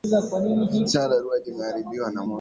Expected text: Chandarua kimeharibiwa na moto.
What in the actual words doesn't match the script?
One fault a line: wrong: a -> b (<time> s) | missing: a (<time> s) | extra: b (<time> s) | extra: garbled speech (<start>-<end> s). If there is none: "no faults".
no faults